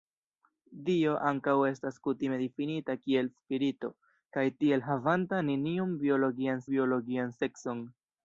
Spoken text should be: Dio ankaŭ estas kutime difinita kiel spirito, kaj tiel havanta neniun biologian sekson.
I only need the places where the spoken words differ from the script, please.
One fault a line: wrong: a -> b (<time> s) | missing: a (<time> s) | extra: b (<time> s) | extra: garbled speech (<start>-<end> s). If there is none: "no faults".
extra: biologian (6.7 s)